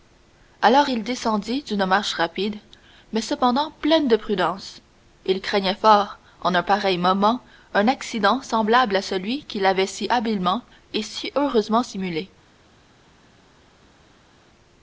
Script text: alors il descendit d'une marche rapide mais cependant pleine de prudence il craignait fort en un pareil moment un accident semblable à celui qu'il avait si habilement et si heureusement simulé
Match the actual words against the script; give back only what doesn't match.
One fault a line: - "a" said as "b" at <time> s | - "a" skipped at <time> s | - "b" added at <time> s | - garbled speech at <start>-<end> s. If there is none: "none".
none